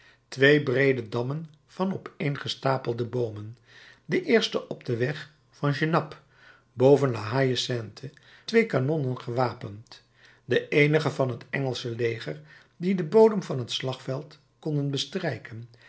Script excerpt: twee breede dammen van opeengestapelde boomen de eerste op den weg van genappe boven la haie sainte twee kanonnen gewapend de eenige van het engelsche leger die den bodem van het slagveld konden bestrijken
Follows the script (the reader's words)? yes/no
yes